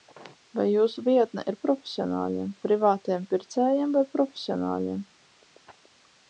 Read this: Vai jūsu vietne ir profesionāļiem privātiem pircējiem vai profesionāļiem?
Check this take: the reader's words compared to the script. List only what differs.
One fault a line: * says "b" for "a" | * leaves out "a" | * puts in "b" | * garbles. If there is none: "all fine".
all fine